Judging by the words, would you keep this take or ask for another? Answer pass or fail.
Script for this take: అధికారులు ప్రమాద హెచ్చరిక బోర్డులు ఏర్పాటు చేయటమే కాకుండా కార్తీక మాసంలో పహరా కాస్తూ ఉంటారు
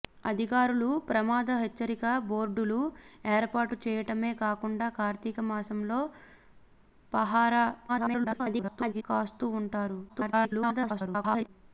fail